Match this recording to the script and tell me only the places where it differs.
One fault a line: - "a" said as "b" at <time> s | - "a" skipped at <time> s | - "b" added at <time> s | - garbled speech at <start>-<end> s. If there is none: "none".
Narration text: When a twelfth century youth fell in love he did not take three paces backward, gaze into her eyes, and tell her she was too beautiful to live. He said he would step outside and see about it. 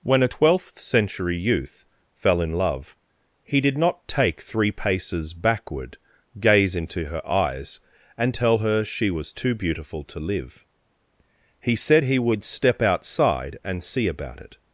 none